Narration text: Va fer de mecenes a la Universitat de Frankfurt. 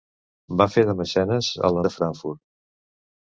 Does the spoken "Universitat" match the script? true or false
false